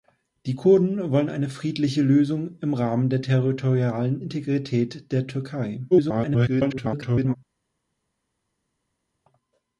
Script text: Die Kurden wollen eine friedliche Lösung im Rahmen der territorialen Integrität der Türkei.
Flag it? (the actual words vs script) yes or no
yes